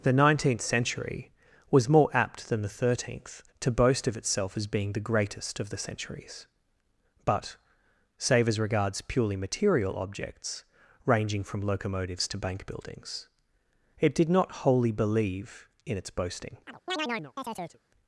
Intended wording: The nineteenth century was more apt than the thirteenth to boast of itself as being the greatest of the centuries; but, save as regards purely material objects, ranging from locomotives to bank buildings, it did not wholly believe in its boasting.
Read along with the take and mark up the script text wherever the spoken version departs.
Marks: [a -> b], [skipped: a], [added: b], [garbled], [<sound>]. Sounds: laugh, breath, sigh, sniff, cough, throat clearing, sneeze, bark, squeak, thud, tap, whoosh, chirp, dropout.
The nineteenth century was more apt than the thirteenth to boast of itself as being the greatest of the centuries; but, save as regards purely material objects, ranging from locomotives to bank buildings, it did not wholly believe in its boasting. [chirp]